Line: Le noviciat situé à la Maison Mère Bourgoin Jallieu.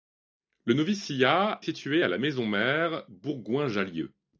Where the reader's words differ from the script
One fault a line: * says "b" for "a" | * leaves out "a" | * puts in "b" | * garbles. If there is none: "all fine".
all fine